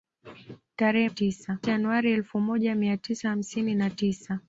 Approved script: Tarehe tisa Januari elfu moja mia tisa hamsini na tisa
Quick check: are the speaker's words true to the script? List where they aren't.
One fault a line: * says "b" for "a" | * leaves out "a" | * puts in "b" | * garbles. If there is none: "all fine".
all fine